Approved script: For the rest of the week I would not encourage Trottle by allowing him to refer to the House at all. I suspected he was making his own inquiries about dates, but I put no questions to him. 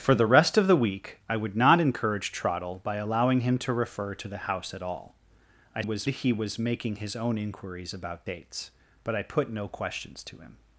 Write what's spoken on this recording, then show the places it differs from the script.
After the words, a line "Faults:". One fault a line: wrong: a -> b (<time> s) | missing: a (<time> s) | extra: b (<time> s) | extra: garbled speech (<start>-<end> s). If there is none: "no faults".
For the rest of the week I would not encourage Trottle by allowing him to refer to the House at all. I was he was making his own inquiries about dates, but I put no questions to him.
Faults:
wrong: suspected -> was (5.8 s)